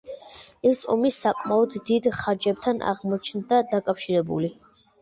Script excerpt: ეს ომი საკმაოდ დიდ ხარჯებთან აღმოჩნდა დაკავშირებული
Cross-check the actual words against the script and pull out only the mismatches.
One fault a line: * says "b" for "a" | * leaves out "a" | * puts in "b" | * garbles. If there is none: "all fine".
all fine